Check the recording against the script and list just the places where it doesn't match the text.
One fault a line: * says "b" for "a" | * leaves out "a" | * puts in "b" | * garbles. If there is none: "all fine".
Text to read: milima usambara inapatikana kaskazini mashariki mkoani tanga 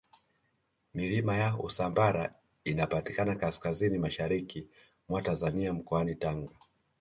* puts in "ya"
* puts in "mwa tanzania"